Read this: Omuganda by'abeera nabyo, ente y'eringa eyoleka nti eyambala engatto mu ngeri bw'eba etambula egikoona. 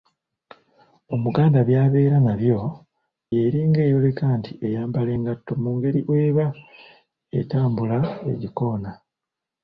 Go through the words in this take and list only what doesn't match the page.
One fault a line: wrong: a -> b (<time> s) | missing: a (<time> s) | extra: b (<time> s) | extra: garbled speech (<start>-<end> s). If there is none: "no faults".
missing: ente (2.6 s)